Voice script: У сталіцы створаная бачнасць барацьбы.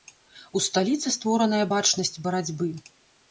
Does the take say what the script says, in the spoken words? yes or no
yes